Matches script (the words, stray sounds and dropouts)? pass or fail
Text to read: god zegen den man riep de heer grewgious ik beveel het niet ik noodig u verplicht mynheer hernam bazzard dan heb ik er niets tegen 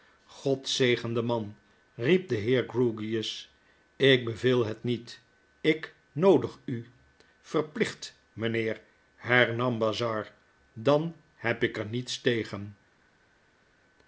pass